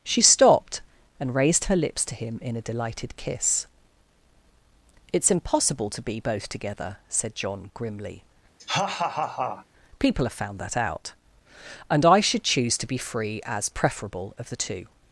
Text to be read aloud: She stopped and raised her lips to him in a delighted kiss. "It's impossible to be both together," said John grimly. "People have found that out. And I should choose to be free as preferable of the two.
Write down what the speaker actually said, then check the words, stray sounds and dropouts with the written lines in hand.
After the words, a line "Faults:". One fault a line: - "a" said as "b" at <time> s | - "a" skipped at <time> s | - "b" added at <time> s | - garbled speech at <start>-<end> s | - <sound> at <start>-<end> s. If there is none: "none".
She stopped and raised her lips to him in a delighted kiss. "It's impossible to be both together," said John grimly. "People have found that out. And I should choose to be free as preferable of the two.
Faults:
- laugh at 8.6-9.7 s